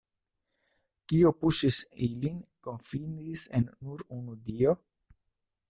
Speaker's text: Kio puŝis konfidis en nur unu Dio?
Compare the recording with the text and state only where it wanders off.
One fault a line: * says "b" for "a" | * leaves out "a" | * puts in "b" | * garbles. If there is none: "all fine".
* puts in "ilin"